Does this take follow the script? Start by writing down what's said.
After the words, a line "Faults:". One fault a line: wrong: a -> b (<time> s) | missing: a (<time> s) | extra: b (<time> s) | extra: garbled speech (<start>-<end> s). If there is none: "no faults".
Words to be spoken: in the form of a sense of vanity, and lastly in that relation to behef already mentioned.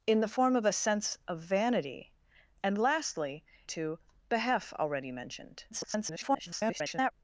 in the form of a sense of vanity, and lastly to behef already mentioned. [garbled]
Faults:
missing: in that relation (3.4 s)
extra: garbled speech (5.7-7.1 s)